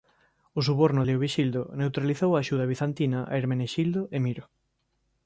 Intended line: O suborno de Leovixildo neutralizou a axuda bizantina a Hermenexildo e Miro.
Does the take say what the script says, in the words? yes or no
no